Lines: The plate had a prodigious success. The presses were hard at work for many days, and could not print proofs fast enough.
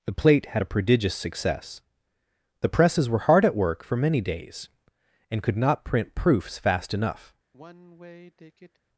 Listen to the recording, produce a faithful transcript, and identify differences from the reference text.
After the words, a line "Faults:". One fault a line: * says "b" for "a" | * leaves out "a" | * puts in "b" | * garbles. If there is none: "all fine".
The plate had a prodigious success. The presses were hard at work for many days, and could not print proofs fast enough.
Faults:
all fine